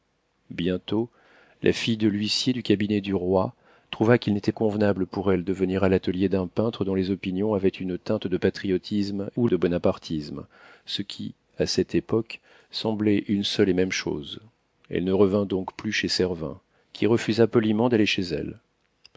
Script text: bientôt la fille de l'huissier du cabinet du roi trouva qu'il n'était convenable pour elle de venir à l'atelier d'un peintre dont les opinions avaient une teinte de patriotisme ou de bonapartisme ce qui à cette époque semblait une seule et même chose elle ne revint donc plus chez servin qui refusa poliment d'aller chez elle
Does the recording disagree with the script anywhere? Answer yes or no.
no